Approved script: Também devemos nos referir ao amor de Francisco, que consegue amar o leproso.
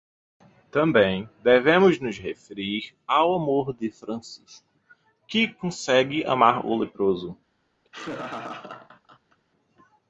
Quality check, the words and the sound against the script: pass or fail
fail